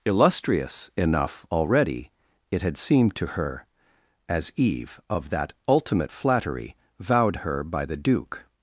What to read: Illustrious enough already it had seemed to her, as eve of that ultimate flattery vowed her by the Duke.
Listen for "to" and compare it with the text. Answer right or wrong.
right